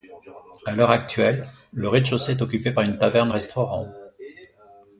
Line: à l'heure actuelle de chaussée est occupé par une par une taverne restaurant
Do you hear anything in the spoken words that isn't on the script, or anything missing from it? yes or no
yes